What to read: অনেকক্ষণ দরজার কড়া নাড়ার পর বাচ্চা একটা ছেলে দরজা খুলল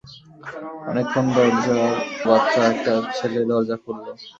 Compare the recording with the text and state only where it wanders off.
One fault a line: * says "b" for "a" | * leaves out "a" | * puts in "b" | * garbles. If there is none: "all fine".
* leaves out "কড়া নাড়ার পর"